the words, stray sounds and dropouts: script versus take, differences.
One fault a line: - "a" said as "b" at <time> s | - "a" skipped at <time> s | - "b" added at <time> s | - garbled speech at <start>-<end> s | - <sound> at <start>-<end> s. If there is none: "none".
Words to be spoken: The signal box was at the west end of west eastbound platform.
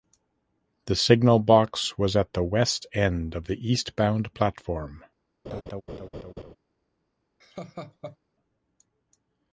- "west" said as "the" at 3.5 s
- laugh at 5.5-6.6 s
- laugh at 7.4-8.2 s